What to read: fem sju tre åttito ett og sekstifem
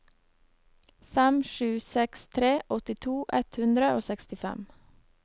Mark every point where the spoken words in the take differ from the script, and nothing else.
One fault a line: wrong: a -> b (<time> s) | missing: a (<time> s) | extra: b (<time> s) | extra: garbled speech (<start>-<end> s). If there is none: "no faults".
extra: seks (1.9 s)
extra: hundre (3.6 s)